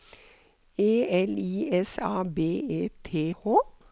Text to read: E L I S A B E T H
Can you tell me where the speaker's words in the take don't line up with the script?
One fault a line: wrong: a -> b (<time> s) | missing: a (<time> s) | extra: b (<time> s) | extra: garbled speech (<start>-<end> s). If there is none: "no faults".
no faults